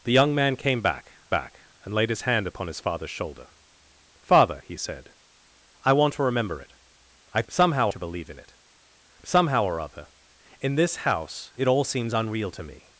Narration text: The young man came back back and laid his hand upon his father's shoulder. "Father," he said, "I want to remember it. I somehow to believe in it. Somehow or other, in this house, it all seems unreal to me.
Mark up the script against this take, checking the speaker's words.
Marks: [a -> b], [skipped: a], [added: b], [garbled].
The young man came back back and laid his hand upon his father's shoulder. "Father," he said, "I want to remember it. I somehow to believe in it. Somehow or other, in this house, it all seems unreal to me.